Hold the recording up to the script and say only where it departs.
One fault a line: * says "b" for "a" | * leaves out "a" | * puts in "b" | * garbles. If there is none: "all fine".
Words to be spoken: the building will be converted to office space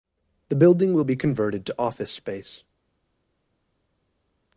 all fine